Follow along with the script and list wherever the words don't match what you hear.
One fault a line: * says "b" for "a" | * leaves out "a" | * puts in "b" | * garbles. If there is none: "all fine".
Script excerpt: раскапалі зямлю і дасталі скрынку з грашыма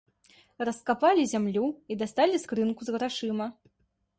all fine